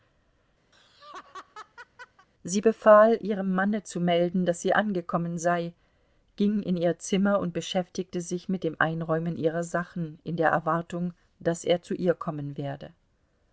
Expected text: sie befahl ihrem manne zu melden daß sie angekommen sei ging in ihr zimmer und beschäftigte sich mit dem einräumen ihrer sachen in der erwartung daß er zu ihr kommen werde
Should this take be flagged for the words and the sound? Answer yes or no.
yes